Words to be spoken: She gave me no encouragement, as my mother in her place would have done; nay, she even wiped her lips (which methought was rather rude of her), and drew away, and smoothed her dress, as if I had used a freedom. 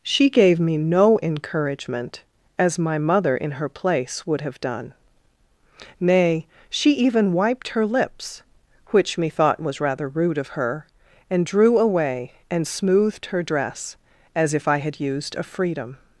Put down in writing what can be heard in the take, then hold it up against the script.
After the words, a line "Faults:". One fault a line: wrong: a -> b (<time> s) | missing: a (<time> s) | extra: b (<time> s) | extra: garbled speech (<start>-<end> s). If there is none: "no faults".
She gave me no encouragement, as my mother in her place would have done; nay, she even wiped her lips (which methought was rather rude of her), and drew away, and smoothed her dress, as if I had used a freedom.
Faults:
no faults